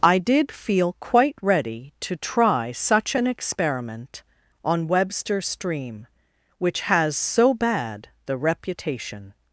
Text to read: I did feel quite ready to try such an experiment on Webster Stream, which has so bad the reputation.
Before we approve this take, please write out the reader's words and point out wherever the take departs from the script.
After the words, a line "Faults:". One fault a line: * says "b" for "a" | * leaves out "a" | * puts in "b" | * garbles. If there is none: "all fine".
I did feel quite ready to try such an experiment on Webster Stream, which has so bad the reputation.
Faults:
all fine